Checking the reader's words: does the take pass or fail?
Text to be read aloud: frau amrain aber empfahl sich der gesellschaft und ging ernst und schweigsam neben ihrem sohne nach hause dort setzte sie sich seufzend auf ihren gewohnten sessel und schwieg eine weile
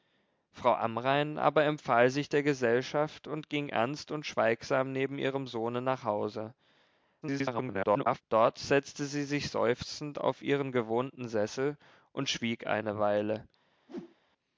fail